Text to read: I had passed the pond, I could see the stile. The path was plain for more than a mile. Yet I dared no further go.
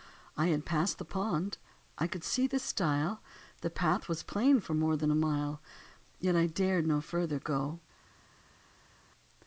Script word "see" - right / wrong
right